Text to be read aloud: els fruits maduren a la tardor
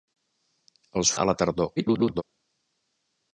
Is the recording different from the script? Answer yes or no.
yes